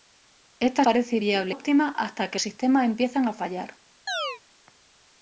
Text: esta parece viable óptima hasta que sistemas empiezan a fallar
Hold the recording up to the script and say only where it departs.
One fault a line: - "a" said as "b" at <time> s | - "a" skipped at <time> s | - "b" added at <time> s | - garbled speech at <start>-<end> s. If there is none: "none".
none